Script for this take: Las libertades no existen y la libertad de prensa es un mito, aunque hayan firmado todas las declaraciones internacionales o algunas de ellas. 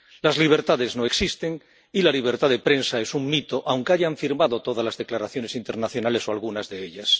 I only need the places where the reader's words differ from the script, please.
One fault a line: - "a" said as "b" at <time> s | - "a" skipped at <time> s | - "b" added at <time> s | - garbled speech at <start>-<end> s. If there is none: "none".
none